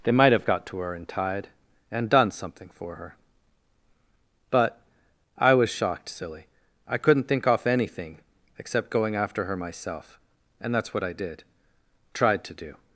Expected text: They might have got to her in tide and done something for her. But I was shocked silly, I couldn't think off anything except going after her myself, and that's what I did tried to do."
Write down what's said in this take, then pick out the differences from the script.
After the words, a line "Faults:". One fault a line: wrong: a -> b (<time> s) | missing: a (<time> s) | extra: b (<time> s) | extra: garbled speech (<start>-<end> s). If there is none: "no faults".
They might have got to her in tide and done something for her. But I was shocked silly, I couldn't think off anything except going after her myself, and that's what I did tried to do."
Faults:
no faults